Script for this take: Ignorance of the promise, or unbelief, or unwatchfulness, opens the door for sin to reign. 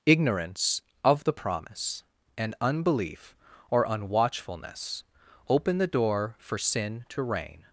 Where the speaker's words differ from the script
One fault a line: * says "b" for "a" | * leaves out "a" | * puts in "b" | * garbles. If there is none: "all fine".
* says "and" for "or"
* says "open" for "opens"